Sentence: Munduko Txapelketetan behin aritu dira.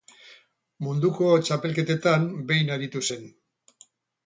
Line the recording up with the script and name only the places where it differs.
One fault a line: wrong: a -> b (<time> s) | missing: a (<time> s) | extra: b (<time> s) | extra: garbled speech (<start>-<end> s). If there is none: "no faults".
wrong: dira -> zen (3.1 s)